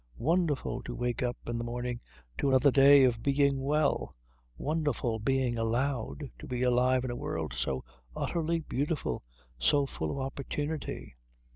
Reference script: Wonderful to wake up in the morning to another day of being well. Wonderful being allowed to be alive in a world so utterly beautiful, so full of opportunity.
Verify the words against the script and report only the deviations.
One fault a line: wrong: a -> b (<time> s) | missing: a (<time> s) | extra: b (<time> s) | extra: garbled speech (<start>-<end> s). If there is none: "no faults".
no faults